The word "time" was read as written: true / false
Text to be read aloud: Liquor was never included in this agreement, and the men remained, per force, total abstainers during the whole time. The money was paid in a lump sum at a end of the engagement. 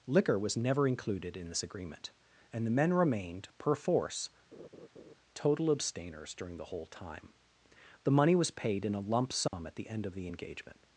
true